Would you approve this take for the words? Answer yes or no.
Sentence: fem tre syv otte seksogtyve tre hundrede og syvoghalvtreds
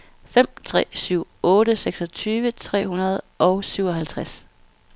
yes